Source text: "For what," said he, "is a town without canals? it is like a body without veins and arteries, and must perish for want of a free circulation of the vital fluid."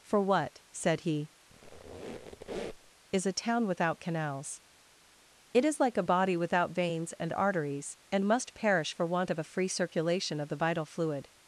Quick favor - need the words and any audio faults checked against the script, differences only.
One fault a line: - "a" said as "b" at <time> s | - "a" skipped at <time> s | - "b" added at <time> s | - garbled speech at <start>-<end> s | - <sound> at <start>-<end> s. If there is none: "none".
- squeak at 1.5-2.9 s